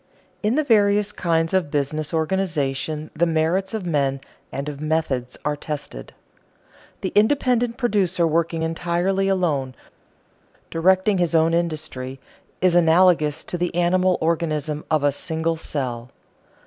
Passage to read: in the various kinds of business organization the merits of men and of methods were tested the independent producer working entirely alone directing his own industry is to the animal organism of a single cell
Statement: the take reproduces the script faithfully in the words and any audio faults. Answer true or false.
false